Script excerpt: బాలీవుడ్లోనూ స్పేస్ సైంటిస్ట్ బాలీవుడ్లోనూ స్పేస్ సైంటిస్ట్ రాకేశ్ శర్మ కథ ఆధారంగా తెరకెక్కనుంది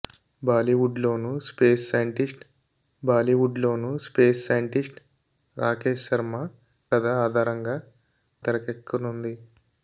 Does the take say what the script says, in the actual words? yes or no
yes